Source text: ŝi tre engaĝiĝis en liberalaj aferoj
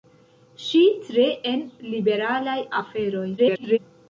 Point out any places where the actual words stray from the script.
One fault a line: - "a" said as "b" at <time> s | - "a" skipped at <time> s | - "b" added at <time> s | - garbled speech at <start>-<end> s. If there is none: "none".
- "engaĝiĝis" skipped at 1.2 s
- garbled speech at 3.4-3.8 s